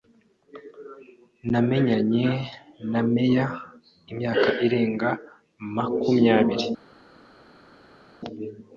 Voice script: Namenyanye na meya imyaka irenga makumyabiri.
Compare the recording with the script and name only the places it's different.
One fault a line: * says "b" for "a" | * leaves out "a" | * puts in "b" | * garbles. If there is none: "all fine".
all fine